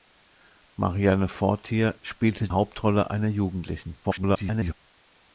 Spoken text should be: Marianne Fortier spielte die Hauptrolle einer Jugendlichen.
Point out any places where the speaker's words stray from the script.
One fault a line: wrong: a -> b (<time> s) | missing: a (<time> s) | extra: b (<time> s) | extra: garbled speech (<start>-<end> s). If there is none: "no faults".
missing: die (2.5 s)
extra: garbled speech (4.0-4.7 s)